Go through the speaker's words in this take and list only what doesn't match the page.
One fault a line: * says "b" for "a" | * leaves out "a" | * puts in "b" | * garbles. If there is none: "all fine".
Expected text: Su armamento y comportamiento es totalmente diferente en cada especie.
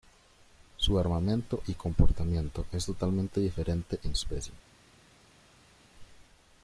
* leaves out "cada"